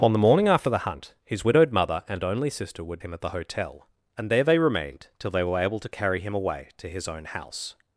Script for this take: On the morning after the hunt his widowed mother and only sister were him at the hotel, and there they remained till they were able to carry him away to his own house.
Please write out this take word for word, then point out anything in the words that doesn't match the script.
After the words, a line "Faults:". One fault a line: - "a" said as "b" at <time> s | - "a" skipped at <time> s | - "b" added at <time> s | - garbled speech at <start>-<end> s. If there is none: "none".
On the morning after the hunt his widowed mother and only sister were him at the hotel, and there they remained till they were able to carry him away to his own house.
Faults:
none